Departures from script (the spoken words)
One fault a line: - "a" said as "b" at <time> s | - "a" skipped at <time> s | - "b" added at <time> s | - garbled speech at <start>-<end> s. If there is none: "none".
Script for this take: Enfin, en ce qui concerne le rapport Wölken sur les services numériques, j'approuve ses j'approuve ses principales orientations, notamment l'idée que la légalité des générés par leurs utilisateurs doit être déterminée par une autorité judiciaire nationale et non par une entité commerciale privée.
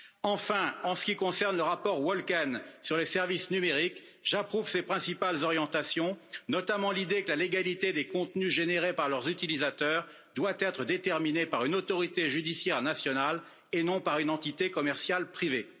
- "j'approuve ses" skipped at 4.8 s
- "contenus" added at 8.1 s